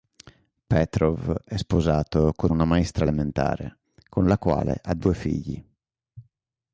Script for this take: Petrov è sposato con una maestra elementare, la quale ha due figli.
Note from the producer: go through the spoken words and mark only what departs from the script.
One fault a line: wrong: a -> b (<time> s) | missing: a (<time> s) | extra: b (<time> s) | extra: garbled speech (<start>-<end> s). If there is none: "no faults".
extra: con (4.1 s)